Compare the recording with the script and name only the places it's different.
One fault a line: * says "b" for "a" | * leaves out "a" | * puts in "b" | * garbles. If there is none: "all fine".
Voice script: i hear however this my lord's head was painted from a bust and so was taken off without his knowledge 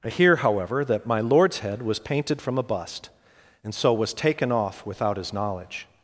* says "that" for "this"